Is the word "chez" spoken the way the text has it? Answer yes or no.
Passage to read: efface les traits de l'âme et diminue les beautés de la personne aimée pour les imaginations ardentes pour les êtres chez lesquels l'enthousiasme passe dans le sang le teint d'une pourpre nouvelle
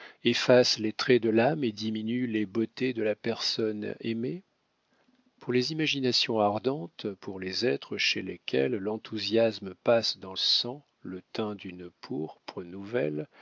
yes